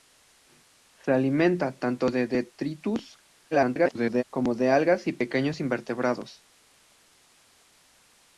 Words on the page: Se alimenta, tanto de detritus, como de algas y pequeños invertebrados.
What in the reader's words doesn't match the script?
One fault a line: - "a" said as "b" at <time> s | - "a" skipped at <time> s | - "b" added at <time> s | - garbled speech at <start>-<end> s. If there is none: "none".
- garbled speech at 3.5-4.2 s